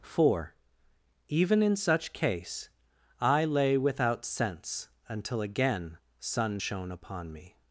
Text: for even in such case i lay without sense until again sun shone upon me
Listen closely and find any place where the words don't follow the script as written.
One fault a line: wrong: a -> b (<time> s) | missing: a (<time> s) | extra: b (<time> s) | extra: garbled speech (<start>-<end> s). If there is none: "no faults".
no faults